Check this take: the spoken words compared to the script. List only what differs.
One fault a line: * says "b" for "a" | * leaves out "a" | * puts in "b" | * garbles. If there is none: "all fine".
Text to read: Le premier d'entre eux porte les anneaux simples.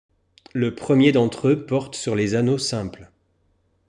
* puts in "sur"